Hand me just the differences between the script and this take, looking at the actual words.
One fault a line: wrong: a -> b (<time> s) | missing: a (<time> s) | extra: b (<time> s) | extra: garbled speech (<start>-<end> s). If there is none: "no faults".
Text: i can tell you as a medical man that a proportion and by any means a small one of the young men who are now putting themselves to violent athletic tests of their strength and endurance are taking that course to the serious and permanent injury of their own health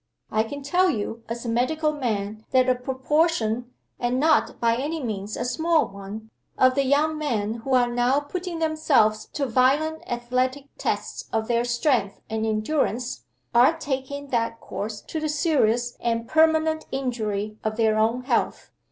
extra: not (4.2 s)